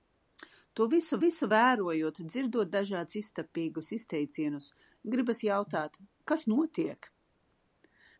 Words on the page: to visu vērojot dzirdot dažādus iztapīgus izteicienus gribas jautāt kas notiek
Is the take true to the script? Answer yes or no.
no